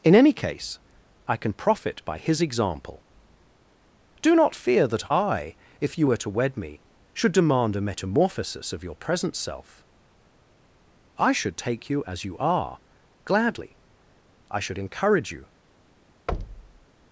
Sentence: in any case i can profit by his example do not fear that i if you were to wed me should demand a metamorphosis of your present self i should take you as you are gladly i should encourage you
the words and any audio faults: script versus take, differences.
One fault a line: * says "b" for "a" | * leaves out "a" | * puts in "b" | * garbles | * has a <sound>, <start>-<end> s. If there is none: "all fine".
* has a thud, 16.3-16.9 s